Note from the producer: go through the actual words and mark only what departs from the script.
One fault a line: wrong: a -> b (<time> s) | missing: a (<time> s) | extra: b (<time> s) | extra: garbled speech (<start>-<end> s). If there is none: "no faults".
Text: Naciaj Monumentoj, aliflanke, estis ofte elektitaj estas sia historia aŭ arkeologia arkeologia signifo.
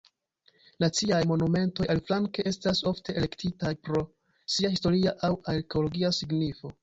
wrong: estis -> estas (2.5 s)
wrong: estas -> pro (3.9 s)
missing: arkeologia (6.1 s)